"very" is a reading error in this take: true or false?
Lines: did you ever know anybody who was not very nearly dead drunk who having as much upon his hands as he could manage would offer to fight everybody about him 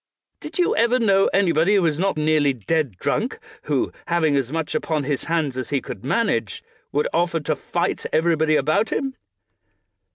true